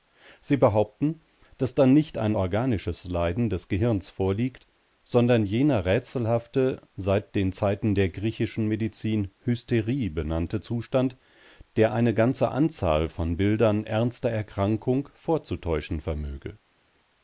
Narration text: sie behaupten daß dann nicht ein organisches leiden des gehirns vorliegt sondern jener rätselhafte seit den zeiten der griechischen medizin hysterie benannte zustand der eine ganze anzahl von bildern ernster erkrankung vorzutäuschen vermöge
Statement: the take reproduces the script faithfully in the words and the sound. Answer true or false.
true